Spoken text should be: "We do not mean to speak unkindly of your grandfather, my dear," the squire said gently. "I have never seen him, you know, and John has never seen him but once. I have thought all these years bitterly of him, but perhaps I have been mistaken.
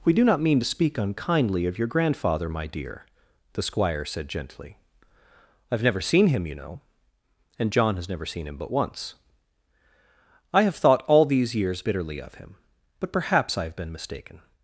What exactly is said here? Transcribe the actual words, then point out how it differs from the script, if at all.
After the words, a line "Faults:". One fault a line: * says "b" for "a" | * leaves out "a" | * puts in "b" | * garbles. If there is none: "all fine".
"We do not mean to speak unkindly of your grandfather, my dear," the squire said gently. "I have never seen him, you know, and John has never seen him but once. I have thought all these years bitterly of him, but perhaps I have been mistaken.
Faults:
all fine